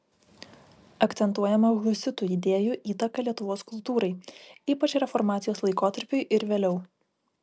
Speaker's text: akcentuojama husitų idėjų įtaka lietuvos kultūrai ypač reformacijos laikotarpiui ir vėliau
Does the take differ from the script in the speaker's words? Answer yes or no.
no